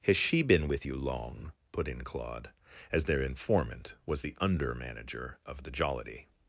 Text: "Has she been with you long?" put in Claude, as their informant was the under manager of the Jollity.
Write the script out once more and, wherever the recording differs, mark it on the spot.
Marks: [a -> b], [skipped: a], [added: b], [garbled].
"Has she been with you long?" put in Claude, as their informant was the under manager of the Jollity.